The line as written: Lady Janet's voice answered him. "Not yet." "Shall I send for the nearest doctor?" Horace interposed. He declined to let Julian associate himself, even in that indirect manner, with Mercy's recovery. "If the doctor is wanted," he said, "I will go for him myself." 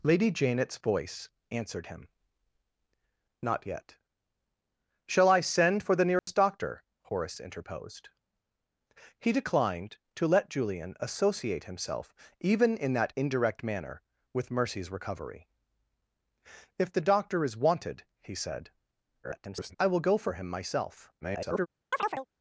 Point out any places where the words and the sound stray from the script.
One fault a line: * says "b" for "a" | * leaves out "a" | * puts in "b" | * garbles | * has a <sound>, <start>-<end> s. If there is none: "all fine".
* has a dropout, 6.2-6.3 s
* garbles
* garbles
* has a chirp, 21.9-22.3 s